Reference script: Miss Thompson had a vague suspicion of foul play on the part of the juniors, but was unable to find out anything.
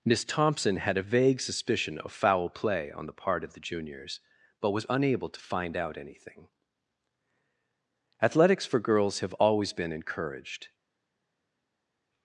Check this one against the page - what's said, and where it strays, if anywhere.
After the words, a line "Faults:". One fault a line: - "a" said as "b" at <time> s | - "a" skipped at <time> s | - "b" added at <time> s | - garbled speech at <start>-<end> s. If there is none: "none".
Miss Thompson had a vague suspicion of foul play on the part of the juniors, but was unable to find out anything. "Athletics for girls have always been encouraged
Faults:
- "Athletics for girls have always been encouraged" added at 8.2 s